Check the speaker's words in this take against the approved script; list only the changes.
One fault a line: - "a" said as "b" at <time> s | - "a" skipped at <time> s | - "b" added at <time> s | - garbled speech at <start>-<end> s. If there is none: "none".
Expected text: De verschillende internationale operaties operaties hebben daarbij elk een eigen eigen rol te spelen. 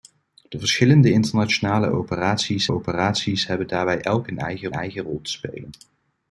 none